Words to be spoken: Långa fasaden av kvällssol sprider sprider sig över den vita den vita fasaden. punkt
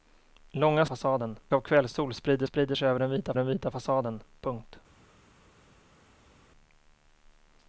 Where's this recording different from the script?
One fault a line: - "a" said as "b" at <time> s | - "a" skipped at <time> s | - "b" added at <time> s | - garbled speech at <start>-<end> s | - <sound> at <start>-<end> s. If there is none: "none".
none